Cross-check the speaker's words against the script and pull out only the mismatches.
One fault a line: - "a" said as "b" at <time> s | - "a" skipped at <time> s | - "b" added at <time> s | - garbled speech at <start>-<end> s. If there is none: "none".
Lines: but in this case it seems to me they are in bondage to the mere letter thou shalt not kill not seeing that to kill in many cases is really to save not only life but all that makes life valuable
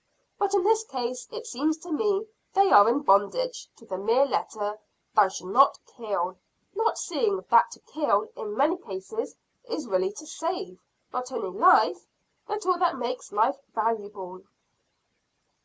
none